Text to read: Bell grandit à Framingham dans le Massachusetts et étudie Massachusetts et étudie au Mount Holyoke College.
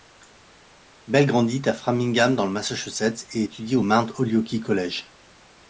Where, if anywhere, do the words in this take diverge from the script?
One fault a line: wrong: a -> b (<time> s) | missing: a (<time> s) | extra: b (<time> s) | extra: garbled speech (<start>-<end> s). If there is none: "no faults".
missing: Massachusetts et étudie (3.8 s)